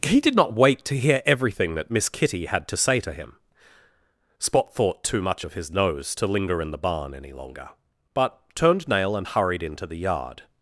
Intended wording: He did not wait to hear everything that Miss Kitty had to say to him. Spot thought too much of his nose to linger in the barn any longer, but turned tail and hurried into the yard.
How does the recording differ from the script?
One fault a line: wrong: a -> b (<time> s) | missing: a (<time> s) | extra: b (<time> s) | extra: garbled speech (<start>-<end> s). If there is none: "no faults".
wrong: tail -> nail (8.9 s)